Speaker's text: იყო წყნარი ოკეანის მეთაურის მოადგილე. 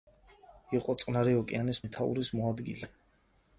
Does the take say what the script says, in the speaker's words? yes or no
yes